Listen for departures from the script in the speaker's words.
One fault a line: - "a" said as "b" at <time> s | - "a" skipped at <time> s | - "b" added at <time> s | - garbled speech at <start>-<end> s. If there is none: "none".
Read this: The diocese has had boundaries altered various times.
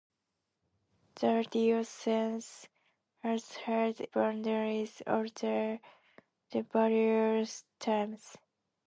none